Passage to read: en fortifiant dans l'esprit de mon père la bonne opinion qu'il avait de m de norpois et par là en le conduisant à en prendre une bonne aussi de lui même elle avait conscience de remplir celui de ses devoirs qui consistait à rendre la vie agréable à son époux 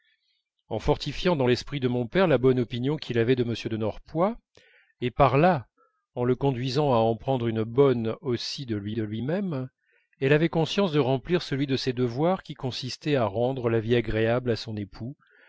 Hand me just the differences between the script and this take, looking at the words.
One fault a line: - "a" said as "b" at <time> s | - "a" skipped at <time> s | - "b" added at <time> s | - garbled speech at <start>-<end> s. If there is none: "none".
- "de lui" added at 8.9 s